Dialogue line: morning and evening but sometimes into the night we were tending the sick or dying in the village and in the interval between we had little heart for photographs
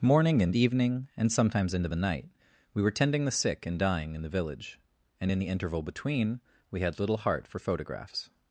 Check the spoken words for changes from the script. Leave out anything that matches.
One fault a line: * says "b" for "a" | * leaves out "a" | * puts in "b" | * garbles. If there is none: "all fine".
* says "and" for "but"
* says "and" for "or"